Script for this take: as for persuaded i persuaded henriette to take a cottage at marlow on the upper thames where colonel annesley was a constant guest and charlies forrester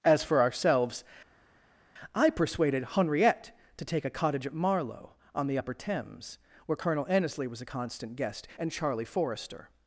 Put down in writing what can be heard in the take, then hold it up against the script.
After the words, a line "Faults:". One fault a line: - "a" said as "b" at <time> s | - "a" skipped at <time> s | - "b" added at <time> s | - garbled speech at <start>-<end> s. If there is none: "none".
as for ourselves i persuaded henriette to take a cottage at marlow on the upper thames where colonel annesley was a constant guest and charlie forrester
Faults:
- "persuaded" said as "ourselves" at 0.4 s
- "charlies" said as "charlie" at 8.7 s